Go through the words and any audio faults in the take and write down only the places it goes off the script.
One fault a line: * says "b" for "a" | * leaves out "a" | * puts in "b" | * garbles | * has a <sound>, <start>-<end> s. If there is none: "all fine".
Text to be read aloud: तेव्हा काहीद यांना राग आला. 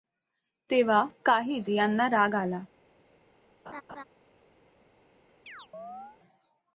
* has a laugh, 3.7-4.0 s
* has a chirp, 5.5-6.2 s